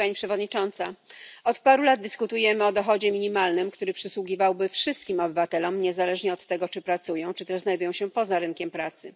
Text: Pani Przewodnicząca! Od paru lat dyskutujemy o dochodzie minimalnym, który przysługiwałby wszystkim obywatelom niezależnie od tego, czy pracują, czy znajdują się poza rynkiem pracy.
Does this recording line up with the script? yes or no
no